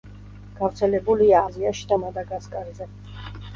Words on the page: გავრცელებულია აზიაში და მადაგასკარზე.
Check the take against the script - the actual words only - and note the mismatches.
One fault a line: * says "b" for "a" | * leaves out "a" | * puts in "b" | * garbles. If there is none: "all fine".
all fine